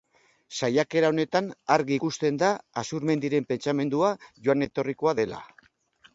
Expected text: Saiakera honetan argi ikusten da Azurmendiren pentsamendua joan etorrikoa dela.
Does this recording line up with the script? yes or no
yes